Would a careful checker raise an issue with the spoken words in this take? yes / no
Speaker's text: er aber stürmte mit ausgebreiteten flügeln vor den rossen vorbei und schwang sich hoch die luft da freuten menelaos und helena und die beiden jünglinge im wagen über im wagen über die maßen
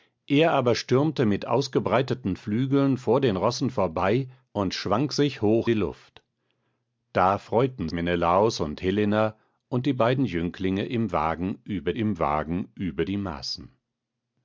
no